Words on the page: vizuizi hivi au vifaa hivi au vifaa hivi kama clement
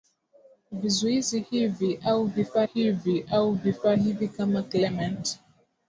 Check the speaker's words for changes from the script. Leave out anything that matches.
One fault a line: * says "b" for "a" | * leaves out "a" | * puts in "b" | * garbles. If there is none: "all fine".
all fine